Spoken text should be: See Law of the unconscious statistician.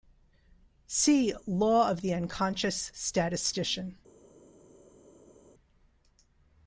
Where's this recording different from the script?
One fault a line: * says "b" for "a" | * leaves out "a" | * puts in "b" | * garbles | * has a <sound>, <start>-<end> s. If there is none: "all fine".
all fine